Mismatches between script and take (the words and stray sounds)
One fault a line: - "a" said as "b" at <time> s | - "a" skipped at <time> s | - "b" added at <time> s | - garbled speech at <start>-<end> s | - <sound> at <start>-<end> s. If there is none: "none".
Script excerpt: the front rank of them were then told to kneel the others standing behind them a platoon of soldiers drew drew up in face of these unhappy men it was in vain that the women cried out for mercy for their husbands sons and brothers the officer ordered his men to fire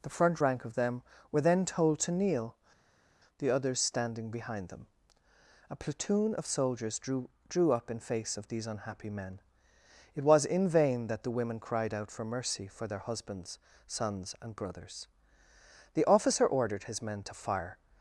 none